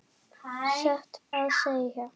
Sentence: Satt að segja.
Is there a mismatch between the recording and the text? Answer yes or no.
no